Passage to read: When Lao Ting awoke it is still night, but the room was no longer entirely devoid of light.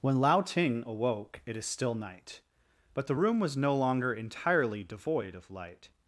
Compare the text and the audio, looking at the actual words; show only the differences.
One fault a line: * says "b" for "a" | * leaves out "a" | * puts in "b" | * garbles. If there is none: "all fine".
all fine